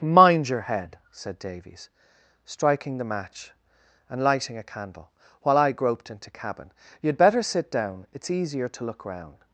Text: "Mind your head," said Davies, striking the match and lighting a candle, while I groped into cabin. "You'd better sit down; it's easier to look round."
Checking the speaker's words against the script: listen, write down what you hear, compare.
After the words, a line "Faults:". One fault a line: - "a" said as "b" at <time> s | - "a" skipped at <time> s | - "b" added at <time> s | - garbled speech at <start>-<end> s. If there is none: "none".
"Mind your head," said Davies, striking the match and lighting a candle, while I groped into cabin. "You'd better sit down; it's easier to look round."
Faults:
none